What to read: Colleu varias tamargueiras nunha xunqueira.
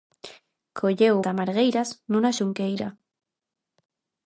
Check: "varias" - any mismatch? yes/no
yes